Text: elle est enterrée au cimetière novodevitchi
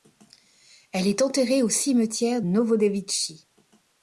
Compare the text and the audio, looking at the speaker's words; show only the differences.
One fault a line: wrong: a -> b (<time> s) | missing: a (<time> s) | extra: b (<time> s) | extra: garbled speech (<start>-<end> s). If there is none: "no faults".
no faults